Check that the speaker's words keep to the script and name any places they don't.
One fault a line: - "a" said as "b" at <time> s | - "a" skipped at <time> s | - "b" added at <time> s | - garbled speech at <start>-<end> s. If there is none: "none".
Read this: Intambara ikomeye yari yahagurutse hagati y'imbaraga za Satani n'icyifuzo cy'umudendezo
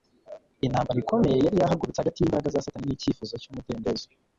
none